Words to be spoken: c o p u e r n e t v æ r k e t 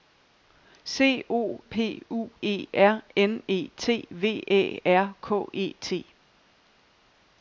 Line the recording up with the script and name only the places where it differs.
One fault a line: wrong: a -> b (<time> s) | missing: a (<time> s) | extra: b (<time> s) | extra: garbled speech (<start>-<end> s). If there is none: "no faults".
no faults